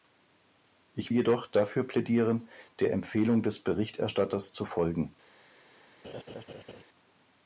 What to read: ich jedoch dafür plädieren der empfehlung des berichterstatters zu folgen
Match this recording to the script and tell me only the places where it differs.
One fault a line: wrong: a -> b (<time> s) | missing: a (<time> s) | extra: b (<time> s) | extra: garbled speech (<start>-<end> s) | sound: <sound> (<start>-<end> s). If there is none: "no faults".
sound: laugh (6.0-6.8 s)